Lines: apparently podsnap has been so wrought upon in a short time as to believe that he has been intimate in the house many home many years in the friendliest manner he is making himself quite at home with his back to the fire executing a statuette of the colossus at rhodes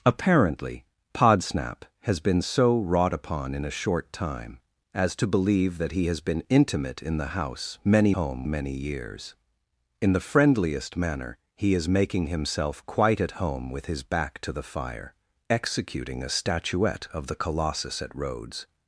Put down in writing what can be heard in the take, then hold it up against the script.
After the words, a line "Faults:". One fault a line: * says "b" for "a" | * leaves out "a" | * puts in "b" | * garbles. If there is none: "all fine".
apparently podsnap has been so wrought upon in a short time as to believe that he has been intimate in the house many home many years in the friendliest manner he is making himself quite at home with his back to the fire executing a statuette of the colossus at rhodes
Faults:
all fine